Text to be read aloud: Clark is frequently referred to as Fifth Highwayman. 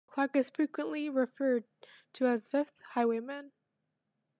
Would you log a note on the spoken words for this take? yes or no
no